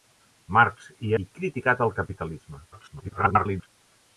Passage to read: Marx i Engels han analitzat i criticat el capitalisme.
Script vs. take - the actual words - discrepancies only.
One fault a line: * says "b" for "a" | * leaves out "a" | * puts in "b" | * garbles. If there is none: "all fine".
* leaves out "Engels han analitzat"
* garbles